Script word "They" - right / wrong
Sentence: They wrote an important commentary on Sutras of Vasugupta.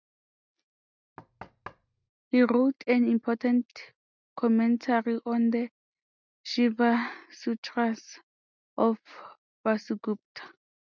wrong